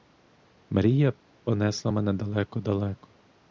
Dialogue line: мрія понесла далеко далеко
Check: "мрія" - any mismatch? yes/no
no